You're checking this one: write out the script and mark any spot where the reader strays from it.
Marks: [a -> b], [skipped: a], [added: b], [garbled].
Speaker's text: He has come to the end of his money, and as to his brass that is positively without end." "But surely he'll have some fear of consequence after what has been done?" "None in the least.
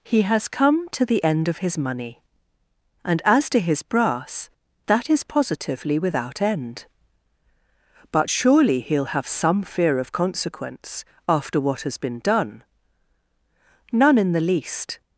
He has come to the end of his money, and as to his brass that is positively without end." "But surely he'll have some fear of consequence after what has been done?" "None in the least.